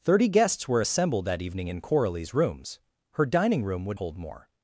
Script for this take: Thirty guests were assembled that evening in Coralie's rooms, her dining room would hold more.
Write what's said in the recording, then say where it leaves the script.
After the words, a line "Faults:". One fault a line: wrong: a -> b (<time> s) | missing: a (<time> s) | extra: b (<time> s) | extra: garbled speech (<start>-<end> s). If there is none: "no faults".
Thirty guests were assembled that evening in Coralie's rooms, her dining room would hold more.
Faults:
no faults